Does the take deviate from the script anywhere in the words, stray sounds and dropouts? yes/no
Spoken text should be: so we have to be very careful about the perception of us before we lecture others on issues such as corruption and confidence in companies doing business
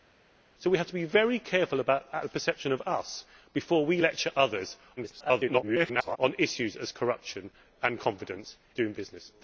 yes